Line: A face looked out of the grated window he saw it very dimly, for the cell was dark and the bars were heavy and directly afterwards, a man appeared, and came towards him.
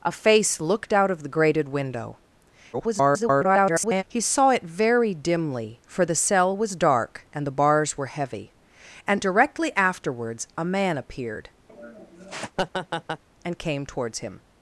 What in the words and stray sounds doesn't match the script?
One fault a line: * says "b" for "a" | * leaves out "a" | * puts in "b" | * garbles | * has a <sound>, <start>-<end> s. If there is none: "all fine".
* garbles
* has a laugh, 11.7-13.2 s